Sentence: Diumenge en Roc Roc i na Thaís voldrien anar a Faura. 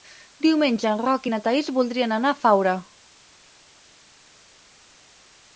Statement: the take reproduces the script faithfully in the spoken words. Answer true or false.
false